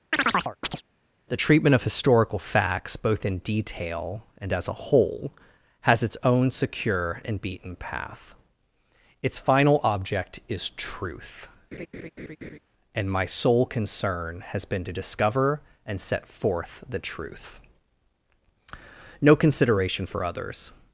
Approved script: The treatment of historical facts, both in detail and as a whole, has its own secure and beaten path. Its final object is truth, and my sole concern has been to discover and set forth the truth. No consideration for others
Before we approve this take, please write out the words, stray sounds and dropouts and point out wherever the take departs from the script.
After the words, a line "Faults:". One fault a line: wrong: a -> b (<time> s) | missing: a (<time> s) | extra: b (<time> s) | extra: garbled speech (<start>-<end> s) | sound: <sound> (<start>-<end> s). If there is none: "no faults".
The treatment of historical facts, both in detail and as a whole, has its own secure and beaten path. Its final object is truth, and my sole concern has been to discover and set forth the truth. No consideration for others
Faults:
sound: chirp (0.1-0.8 s)
sound: laugh (11.7-12.6 s)